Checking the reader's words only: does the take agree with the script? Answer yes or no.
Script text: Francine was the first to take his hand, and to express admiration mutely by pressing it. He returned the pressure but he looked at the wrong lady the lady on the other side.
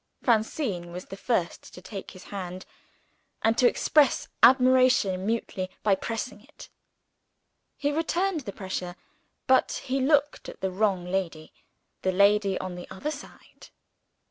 yes